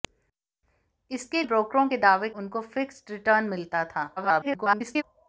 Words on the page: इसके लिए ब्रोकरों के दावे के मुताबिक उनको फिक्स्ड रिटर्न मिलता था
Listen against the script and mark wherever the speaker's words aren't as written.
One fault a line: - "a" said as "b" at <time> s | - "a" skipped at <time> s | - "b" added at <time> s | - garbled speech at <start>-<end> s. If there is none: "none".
- "लिए" skipped at 1.4 s
- "के मुताबिक" skipped at 2.3 s
- garbled speech at 4.2-5.0 s